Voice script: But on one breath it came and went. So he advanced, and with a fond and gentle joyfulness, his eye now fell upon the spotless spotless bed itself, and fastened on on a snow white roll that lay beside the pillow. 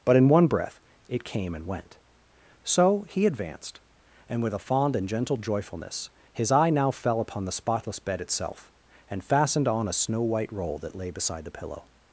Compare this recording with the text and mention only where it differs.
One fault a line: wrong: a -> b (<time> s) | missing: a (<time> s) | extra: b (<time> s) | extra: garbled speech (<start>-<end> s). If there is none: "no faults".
wrong: on -> in (0.1 s)
missing: spotless (8.0 s)
missing: on (9.9 s)